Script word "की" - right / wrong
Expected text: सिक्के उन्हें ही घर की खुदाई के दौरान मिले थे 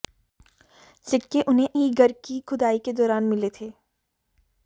right